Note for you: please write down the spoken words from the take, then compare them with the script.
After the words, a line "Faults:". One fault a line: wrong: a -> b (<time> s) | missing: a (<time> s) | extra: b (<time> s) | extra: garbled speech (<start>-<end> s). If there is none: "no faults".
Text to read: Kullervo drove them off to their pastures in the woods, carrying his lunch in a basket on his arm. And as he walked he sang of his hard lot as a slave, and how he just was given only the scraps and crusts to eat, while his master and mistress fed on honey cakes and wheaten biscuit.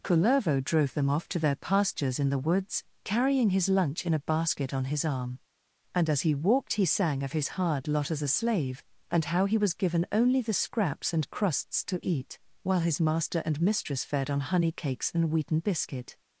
Kullervo drove them off to their pastures in the woods, carrying his lunch in a basket on his arm. And as he walked he sang of his hard lot as a slave, and how he was given only the scraps and crusts to eat, while his master and mistress fed on honey cakes and wheaten biscuit.
Faults:
missing: just (9.6 s)